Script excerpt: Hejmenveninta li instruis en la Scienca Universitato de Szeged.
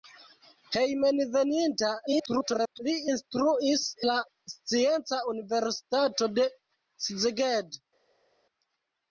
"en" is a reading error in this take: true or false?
true